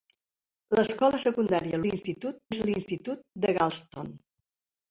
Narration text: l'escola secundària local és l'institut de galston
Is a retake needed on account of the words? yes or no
yes